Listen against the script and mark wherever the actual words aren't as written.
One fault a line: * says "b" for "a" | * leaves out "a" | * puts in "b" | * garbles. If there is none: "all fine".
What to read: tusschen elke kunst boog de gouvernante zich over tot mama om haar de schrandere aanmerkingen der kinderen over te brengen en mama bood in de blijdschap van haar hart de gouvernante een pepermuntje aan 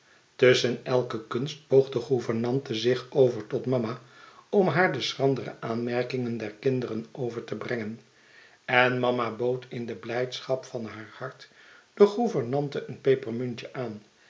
all fine